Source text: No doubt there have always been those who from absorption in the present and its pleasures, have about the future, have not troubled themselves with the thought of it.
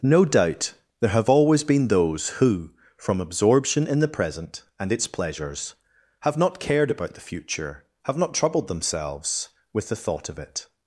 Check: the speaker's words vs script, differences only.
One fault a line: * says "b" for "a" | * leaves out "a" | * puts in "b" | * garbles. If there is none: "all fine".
* puts in "not cared"